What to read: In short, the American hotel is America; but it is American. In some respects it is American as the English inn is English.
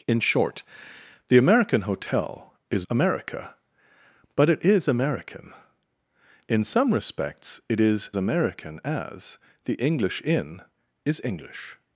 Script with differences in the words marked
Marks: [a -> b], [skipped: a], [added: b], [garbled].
In short, the American hotel is America; but it is American. In some respects it is American as the English inn is English.